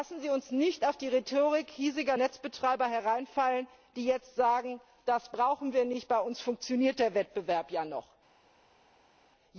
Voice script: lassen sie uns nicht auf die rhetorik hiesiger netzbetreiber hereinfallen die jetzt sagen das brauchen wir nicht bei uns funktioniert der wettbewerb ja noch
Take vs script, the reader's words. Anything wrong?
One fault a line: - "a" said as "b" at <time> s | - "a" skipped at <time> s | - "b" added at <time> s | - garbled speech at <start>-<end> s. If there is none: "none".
none